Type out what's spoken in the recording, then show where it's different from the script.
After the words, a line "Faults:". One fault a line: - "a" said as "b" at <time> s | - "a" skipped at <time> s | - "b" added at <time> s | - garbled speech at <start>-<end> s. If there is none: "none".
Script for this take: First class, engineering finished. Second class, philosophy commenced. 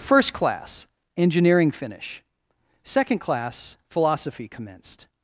First class, engineering finish. Second class, philosophy commenced.
Faults:
- "finished" said as "finish" at 1.7 s